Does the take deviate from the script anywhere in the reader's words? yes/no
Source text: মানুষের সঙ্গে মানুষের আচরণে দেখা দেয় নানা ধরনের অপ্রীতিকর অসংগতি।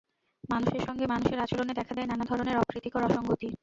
no